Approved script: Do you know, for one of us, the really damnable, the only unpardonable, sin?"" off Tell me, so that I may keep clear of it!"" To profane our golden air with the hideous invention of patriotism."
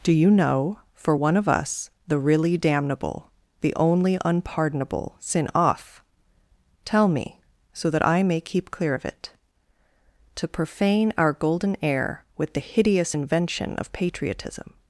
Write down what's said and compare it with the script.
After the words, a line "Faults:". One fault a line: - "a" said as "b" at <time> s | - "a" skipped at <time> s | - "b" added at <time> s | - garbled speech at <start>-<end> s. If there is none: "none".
Do you know, for one of us, the really damnable, the only unpardonable, sin?"" off Tell me, so that I may keep clear of it!"" To profane our golden air with the hideous invention of patriotism."
Faults:
none